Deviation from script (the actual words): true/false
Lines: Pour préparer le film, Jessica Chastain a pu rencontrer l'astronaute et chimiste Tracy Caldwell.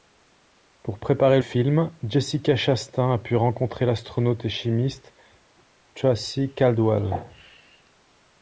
true